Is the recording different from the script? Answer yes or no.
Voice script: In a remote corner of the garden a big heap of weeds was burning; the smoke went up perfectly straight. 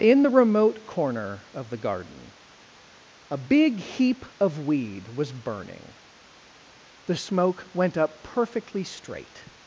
yes